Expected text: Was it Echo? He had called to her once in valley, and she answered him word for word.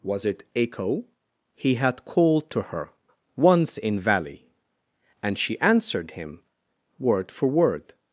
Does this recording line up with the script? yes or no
yes